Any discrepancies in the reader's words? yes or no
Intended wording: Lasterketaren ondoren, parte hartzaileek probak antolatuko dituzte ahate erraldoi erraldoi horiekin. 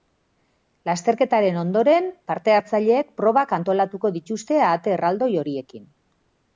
yes